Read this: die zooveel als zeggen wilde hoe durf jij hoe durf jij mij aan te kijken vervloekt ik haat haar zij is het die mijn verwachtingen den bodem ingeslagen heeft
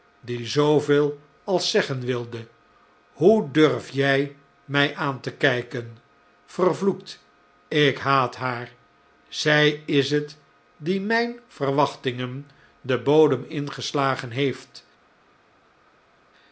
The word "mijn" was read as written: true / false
true